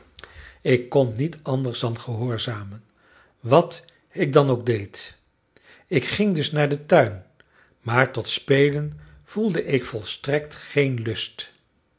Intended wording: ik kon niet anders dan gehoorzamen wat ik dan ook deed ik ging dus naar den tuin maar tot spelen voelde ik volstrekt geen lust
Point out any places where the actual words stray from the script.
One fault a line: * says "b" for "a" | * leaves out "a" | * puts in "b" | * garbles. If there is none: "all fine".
all fine